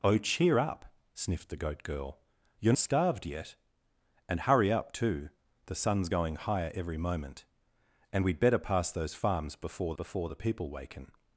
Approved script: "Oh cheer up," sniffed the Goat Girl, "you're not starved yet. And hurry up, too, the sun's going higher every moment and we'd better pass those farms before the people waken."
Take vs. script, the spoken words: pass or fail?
fail